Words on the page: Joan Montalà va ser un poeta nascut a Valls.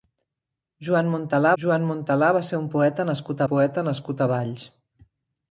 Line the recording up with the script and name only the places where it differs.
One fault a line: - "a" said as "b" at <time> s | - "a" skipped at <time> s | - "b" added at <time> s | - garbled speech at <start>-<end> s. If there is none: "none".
- "joan Montalà" added at 1.6 s
- "poeta nascut" added at 3.5 s